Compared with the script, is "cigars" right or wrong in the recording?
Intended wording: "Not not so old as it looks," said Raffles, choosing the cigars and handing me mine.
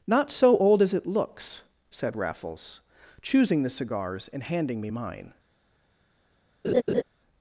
right